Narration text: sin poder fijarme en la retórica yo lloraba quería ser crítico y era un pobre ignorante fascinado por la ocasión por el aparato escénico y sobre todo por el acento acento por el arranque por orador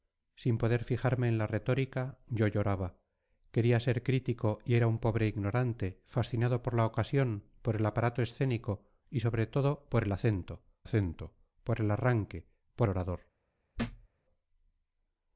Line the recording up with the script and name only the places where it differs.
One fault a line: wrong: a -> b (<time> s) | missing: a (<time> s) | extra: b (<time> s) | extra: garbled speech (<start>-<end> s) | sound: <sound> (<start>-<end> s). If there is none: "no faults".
sound: thud (13.7-14.1 s)